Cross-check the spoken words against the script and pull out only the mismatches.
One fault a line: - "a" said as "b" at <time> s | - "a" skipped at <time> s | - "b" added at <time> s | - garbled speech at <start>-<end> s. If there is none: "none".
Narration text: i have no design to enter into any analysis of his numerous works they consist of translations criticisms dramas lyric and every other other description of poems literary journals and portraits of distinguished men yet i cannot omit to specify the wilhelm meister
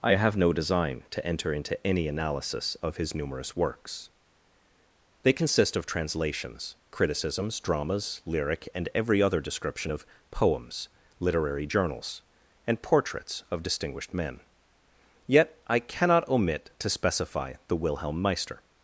- "other" skipped at 9.4 s